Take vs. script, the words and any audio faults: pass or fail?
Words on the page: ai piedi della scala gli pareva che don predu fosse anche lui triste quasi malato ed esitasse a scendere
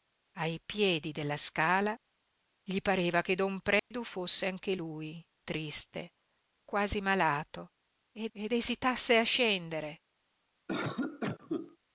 fail